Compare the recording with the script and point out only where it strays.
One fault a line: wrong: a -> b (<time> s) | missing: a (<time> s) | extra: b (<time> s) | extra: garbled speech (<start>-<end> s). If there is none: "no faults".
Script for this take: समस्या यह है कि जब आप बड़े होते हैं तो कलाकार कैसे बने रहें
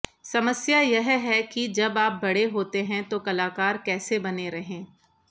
no faults